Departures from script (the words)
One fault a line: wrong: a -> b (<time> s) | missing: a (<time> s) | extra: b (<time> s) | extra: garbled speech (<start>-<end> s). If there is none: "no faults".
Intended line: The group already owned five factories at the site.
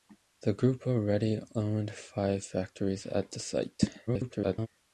extra: garbled speech (4.1-4.7 s)